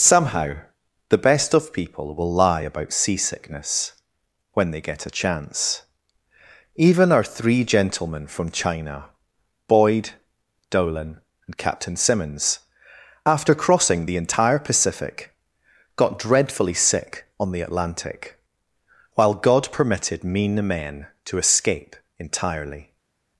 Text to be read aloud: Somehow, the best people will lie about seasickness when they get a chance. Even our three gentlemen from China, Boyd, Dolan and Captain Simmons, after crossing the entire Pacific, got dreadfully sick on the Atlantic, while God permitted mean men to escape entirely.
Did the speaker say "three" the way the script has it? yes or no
yes